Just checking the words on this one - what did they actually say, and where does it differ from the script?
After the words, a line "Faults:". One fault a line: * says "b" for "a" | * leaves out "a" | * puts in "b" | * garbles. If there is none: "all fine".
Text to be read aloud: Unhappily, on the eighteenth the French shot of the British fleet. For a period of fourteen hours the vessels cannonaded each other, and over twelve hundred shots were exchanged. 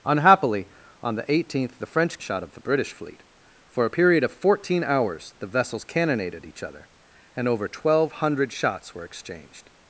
Unhappily, on the eighteenth the French shot of the British fleet. For a period of fourteen hours the vessels cannonaded each other, and over twelve hundred shots were exchanged.
Faults:
all fine